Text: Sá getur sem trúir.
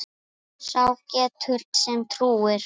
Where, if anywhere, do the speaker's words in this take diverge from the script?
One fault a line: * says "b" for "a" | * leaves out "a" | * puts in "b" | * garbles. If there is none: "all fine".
all fine